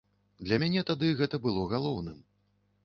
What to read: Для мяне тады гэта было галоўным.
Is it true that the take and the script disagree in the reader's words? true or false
false